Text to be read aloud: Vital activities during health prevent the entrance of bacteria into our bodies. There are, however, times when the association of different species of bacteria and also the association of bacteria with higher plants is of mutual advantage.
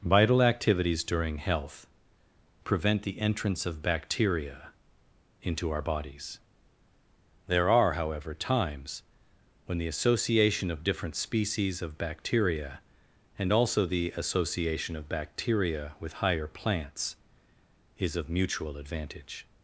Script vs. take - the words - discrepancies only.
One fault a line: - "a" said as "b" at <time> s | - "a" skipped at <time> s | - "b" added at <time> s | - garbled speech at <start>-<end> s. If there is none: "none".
none